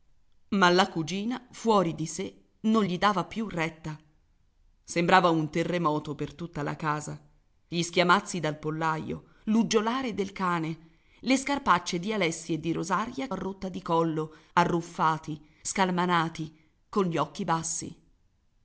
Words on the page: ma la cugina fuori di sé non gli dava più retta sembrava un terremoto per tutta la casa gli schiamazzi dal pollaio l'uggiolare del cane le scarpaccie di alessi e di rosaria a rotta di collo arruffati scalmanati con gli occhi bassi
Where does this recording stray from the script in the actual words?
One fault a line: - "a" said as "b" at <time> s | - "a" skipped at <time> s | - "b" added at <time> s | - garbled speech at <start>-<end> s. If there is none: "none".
none